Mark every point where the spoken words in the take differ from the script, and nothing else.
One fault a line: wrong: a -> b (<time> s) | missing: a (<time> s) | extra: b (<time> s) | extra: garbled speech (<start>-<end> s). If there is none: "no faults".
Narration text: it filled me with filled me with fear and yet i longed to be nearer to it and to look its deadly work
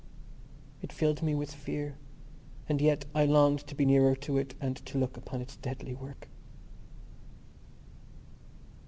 missing: filled me with (1.5 s)
extra: upon (5.2 s)